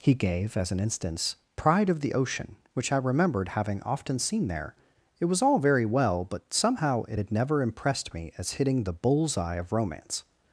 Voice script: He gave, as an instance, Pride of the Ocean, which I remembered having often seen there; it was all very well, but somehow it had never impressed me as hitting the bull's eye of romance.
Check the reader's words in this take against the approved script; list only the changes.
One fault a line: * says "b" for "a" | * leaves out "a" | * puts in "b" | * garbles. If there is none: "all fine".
all fine